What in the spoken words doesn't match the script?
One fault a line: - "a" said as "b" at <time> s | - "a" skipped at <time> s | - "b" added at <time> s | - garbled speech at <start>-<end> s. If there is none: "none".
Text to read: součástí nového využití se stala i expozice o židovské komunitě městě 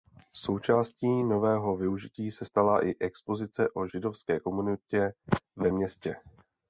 - "ve" added at 5.5 s